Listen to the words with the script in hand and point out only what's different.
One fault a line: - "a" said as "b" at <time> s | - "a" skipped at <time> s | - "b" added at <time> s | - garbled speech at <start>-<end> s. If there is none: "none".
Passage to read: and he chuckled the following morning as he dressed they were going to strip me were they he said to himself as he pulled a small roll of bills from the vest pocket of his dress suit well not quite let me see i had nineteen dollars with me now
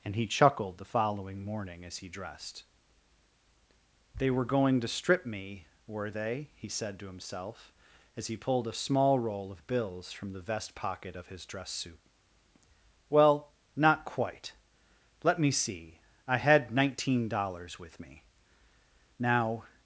none